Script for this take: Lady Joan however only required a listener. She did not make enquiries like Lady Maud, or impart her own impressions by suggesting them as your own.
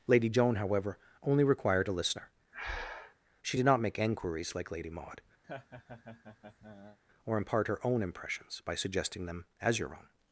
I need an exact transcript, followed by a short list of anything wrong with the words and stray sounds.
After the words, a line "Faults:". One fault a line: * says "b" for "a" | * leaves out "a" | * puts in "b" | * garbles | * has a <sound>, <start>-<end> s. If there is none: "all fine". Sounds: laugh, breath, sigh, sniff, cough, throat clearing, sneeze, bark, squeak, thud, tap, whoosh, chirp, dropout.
Lady Joan however only required a listener. She did not make enquiries like Lady Maud, or impart her own impressions by suggesting them as your own.
Faults:
* has a breath, 2.5-3.2 s
* has a laugh, 5.4-7.0 s